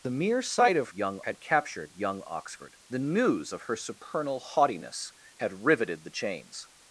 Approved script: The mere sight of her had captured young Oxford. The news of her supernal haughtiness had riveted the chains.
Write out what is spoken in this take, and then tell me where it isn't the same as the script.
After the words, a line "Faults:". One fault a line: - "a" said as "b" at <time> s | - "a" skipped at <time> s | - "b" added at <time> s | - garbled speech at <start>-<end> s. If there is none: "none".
The mere sight of young had captured young Oxford. The news of her supernal haughtiness had riveted the chains.
Faults:
- "her" said as "young" at 0.9 s